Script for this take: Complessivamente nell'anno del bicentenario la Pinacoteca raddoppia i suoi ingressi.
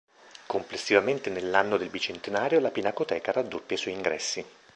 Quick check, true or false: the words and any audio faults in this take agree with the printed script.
true